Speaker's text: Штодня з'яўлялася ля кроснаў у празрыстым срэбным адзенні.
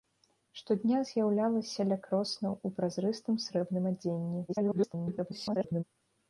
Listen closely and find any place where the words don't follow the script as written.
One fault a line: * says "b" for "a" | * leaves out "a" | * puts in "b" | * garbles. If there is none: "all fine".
* garbles